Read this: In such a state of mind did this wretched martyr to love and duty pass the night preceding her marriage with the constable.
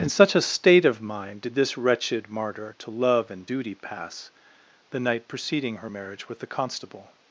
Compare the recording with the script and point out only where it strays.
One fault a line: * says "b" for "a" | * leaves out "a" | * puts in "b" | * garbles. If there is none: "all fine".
all fine